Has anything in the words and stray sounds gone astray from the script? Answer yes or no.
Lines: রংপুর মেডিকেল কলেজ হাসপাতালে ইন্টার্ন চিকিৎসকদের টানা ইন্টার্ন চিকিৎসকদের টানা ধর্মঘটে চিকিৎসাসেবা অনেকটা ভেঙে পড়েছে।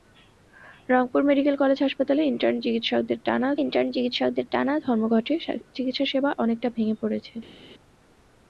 no